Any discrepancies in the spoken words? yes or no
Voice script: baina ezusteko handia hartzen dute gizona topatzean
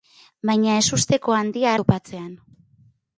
yes